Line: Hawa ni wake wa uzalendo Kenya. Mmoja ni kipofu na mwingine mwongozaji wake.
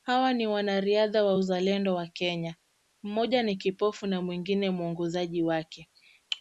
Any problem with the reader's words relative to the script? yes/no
yes